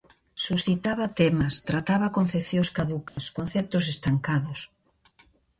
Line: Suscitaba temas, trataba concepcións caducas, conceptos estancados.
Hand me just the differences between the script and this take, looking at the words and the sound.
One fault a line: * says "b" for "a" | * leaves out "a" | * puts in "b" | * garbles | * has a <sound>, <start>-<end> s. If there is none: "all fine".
* has a dropout, 3.1-3.2 s